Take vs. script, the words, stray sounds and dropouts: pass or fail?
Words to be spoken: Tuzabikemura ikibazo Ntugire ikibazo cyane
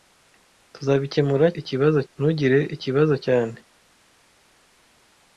pass